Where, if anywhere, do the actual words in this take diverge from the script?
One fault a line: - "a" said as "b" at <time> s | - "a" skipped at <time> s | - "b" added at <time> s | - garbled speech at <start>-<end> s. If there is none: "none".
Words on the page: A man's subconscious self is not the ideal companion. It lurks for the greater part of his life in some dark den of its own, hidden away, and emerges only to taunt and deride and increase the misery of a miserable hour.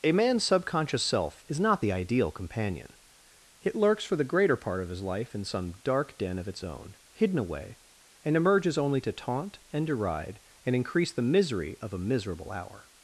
none